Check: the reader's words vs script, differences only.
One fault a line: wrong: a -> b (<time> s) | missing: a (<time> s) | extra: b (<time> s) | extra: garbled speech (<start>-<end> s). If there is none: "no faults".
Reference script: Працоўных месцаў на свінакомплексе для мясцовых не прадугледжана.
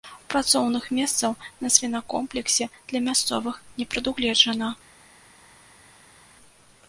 no faults